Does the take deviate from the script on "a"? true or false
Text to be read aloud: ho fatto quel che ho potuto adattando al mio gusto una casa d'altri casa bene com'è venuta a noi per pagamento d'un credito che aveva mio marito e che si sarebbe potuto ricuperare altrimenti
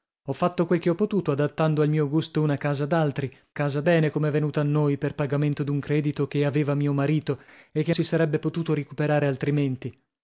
false